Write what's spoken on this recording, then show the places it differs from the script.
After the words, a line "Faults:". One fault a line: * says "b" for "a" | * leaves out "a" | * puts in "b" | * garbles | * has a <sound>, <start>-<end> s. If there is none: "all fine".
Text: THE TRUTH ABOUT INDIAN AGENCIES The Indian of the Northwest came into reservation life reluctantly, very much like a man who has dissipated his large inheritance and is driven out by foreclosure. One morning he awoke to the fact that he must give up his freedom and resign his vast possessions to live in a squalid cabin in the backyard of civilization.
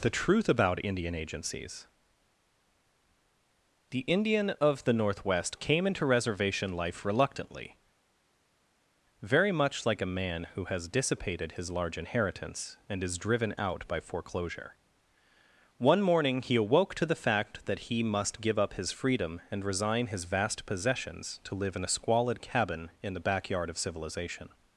THE TRUTH ABOUT INDIAN AGENCIES The Indian of the Northwest came into reservation life reluctantly, very much like a man who has dissipated his large inheritance and is driven out by foreclosure. One morning he awoke to the fact that he must give up his freedom and resign his vast possessions to live in a squalid cabin in the backyard of civilization.
Faults:
all fine